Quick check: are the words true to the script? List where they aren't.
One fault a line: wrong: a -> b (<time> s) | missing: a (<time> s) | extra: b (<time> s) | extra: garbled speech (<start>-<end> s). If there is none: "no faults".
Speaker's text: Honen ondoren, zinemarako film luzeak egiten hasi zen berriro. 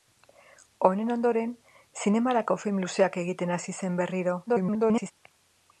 extra: garbled speech (4.5-5.1 s)